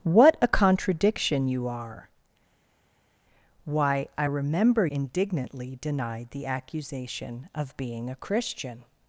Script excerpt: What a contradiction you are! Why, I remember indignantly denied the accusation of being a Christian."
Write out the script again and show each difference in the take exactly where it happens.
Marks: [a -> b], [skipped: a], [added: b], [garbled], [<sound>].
What a contradiction you are! Why, I remember indignantly denied the accusation of being a Christian."